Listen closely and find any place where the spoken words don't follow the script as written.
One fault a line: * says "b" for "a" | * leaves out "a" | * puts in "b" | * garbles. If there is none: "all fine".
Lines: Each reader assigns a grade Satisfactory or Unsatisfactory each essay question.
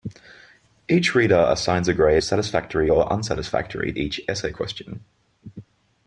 all fine